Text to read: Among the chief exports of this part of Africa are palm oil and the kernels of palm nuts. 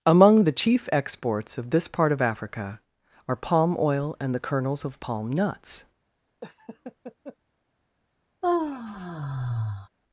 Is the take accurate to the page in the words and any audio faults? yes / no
no